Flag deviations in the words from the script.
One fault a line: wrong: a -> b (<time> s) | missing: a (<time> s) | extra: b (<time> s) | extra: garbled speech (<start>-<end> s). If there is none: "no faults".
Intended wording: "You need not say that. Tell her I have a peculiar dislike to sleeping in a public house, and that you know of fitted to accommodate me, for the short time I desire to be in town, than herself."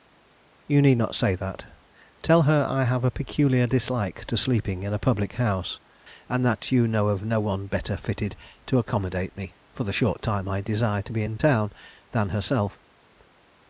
extra: no one better (7.3 s)